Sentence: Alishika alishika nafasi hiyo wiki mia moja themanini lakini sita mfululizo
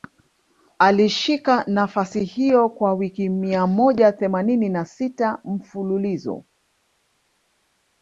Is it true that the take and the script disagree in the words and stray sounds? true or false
true